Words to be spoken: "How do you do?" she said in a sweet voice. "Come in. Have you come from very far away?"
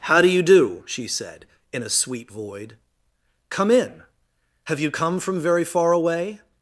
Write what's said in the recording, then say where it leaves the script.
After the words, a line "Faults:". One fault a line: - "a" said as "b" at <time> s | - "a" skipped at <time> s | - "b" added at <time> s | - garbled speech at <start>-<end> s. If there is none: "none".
"How do you do?" she said in a sweet void. "Come in. Have you come from very far away?"
Faults:
- "voice" said as "void" at 2.3 s